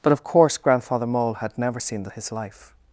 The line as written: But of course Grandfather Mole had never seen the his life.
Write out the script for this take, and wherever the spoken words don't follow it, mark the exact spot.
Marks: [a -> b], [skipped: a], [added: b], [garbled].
But of course Grandfather Mole had never seen the his life.